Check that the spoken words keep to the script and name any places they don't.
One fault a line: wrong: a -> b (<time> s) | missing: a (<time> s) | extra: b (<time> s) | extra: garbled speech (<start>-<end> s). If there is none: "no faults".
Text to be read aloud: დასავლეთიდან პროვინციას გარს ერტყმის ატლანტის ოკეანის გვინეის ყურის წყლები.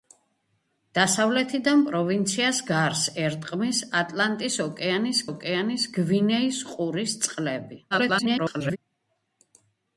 extra: ოკეანის (5.3 s)
extra: garbled speech (7.9-8.8 s)